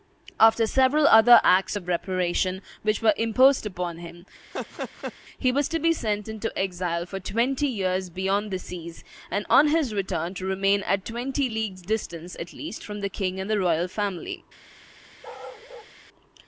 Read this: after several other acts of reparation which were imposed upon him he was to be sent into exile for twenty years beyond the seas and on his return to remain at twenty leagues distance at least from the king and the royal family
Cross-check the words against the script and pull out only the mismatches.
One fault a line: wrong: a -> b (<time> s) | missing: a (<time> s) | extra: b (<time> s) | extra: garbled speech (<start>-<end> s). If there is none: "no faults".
no faults